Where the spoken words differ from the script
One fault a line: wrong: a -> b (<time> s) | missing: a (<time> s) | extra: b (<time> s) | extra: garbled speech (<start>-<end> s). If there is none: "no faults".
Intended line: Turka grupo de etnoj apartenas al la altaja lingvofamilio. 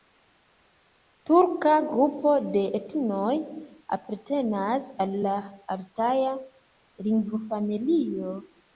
no faults